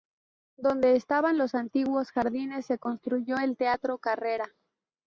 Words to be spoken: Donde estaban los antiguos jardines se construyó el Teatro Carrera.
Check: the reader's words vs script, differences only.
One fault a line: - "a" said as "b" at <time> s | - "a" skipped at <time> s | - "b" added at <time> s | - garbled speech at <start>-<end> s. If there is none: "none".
none